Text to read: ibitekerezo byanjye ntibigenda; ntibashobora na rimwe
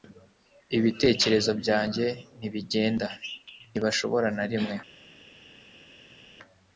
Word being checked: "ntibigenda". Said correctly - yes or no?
yes